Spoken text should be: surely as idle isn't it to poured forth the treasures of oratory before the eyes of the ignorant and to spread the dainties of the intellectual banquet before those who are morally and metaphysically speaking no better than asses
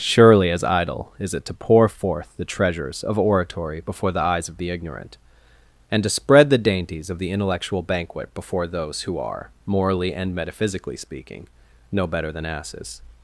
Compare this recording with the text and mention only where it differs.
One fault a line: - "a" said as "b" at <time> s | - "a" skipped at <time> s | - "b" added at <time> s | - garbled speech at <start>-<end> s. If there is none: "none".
- "isn't" said as "is" at 1.2 s
- "poured" said as "pour" at 1.5 s